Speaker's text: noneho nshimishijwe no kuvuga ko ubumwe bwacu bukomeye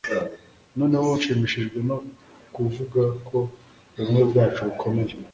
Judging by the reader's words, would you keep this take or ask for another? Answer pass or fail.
pass